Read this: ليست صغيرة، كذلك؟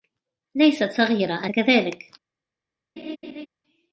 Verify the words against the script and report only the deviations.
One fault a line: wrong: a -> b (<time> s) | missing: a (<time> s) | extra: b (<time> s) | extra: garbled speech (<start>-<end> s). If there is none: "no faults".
no faults